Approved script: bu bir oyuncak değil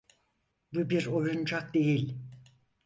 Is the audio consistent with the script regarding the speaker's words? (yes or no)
yes